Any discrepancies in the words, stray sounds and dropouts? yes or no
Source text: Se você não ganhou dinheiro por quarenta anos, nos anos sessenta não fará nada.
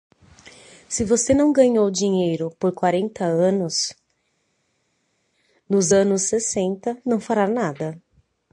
no